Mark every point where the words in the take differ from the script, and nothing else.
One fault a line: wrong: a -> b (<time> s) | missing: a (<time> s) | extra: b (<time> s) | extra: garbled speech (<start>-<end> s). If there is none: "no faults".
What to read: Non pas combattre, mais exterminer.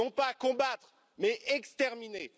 no faults